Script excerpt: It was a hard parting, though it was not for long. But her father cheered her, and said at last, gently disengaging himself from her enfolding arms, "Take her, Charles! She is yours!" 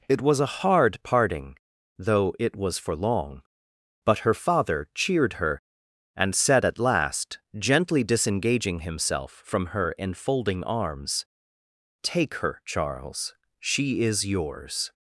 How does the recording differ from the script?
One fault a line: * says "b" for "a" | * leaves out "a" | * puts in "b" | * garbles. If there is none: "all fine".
* leaves out "not"